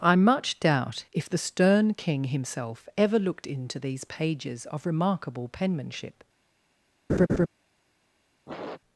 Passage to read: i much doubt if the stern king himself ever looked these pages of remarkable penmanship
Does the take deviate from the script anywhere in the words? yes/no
yes